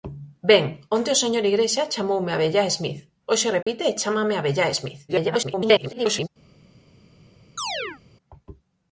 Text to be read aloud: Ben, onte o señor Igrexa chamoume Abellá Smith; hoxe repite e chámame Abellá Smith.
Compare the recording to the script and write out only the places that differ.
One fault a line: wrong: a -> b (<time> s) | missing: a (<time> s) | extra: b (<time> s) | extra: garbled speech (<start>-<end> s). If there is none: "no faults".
extra: garbled speech (5.1-6.3 s)